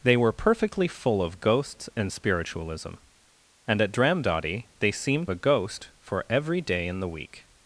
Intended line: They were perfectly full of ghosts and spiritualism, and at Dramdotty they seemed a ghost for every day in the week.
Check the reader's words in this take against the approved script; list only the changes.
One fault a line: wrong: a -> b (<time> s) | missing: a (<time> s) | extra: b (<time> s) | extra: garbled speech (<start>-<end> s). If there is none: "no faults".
no faults